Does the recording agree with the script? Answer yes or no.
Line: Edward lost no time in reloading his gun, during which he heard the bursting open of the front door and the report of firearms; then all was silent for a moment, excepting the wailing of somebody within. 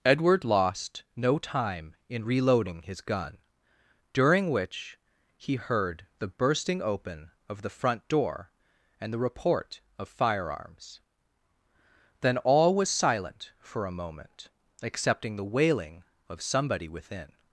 yes